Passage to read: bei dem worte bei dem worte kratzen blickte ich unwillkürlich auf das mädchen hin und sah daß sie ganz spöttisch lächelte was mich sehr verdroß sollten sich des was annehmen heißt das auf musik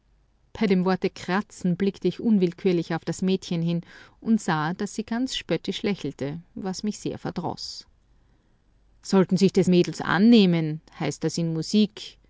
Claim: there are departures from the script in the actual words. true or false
true